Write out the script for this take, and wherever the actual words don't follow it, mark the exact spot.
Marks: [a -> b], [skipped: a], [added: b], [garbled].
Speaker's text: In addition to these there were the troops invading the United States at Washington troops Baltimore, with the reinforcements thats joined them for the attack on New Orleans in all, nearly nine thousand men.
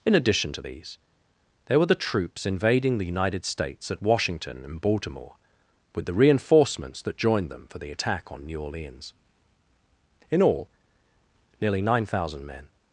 In addition to these there were the troops invading the United States at Washington [troops -> and] Baltimore, with the reinforcements [thats -> that] joined them for the attack on New Orleans in all, nearly nine thousand men.